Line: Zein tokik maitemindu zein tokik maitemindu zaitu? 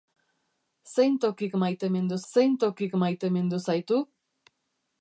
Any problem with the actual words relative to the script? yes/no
no